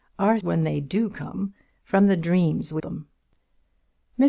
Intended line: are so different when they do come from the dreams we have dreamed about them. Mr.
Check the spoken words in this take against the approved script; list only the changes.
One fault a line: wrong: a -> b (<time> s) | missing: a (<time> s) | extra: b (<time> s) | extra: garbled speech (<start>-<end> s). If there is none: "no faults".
missing: so different (0.4 s)
missing: have dreamed about (2.8 s)